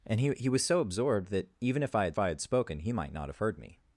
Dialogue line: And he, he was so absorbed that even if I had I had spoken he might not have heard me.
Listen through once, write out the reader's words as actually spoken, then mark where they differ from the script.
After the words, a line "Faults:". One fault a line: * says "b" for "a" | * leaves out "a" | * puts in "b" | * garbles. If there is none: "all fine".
And he, he was so absorbed that even if I had I had spoken he might not have heard me.
Faults:
all fine